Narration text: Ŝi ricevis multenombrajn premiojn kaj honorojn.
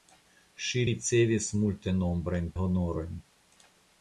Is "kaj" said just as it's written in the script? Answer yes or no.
no